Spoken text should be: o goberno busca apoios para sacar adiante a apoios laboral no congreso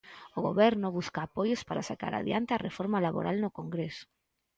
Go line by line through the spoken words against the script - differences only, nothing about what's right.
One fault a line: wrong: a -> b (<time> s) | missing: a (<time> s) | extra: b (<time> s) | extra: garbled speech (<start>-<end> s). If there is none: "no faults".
wrong: apoios -> reforma (2.7 s)